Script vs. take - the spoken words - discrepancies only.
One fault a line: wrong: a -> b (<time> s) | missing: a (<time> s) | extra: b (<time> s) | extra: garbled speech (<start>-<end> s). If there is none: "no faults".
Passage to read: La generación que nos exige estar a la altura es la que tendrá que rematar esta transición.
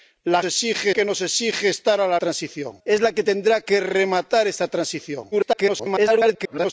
wrong: generación -> exige (0.4 s)
wrong: altura -> transición (2.2 s)
extra: garbled speech (5.3-6.7 s)